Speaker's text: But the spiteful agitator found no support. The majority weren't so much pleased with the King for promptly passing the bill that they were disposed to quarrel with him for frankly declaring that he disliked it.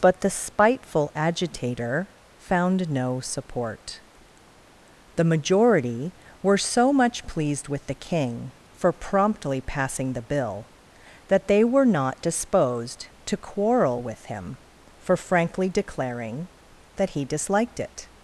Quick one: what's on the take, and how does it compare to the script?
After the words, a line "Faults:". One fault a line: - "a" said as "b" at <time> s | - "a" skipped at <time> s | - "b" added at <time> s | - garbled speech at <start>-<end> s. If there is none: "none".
But the spiteful agitator found no support. The majority were so much pleased with the King for promptly passing the bill that they were not disposed to quarrel with him for frankly declaring that he disliked it.
Faults:
- "weren't" said as "were" at 6.4 s
- "not" added at 11.8 s